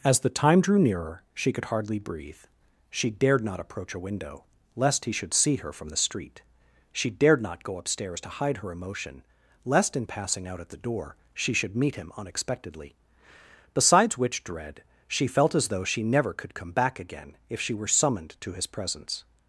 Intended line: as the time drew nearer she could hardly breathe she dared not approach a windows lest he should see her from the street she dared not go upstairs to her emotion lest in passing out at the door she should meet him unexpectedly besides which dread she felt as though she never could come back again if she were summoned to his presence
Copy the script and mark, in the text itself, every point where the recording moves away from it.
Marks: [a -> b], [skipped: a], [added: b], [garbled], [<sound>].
as the time drew nearer she could hardly breathe she dared not approach a [windows -> window] lest he should see her from the street she dared not go upstairs to [added: hide] her emotion lest in passing out at the door she should meet him unexpectedly besides which dread she felt as though she never could come back again if she were summoned to his presence